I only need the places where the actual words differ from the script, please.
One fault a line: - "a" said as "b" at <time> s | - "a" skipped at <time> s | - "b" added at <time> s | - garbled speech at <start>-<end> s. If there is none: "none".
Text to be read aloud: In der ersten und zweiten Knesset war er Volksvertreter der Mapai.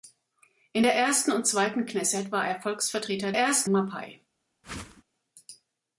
- "der" said as "ersten" at 3.4 s